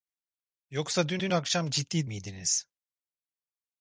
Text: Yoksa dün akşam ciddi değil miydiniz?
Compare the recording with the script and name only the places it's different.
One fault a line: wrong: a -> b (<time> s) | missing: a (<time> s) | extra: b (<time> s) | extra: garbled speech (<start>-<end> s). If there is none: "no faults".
extra: dün (1.2 s)
missing: değil (2.1 s)